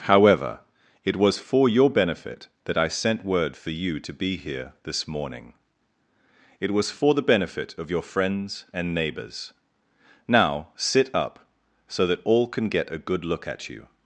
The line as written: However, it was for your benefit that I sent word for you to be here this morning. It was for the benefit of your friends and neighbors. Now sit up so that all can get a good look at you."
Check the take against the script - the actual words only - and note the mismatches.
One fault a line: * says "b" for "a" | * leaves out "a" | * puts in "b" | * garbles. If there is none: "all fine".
all fine